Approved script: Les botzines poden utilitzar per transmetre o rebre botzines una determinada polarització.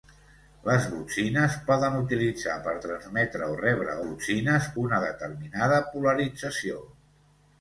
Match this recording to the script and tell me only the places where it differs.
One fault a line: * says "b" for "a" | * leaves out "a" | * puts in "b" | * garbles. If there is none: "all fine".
all fine